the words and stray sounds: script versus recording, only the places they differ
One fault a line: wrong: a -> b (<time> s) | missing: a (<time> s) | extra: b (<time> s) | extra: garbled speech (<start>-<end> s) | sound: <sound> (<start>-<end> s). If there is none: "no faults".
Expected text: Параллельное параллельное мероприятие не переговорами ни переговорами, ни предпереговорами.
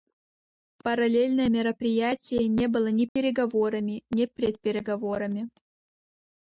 missing: параллельное (1.5 s)
wrong: переговорами -> было (2.7 s)
sound: dropout (3.1-3.2 s)